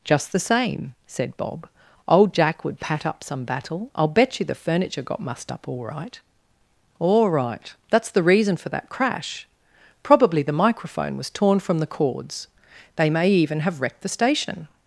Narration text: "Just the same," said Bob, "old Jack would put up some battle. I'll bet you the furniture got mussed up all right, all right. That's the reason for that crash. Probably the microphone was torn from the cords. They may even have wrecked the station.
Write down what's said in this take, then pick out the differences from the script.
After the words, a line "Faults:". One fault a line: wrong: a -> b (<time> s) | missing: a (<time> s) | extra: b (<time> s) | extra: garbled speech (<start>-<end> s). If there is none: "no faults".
"Just the same," said Bob, "old Jack would pat up some battle. I'll bet you the furniture got mussed up all right, all right. That's the reason for that crash. Probably the microphone was torn from the cords. They may even have wrecked the station.
Faults:
wrong: put -> pat (2.8 s)